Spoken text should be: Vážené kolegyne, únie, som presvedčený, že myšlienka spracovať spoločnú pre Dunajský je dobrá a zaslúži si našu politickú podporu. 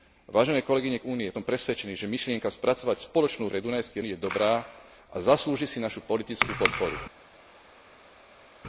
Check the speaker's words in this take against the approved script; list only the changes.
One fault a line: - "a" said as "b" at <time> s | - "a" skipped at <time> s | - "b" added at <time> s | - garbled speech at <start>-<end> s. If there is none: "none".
none